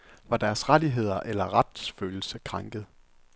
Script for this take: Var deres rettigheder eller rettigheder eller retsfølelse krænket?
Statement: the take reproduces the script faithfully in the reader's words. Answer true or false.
false